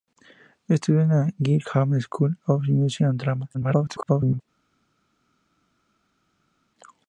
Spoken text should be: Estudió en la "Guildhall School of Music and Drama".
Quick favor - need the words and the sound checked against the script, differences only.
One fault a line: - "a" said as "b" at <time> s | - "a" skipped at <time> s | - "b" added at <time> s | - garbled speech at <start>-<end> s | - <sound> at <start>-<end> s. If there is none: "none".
- garbled speech at 3.5-4.4 s